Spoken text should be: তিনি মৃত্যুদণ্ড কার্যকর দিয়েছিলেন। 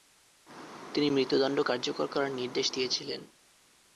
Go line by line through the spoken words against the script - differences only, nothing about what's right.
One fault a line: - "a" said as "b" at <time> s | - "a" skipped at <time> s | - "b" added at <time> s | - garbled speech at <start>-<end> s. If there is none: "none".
- "করার নির্দেশ" added at 2.1 s